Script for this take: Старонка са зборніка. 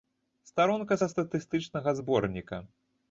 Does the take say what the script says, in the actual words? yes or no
no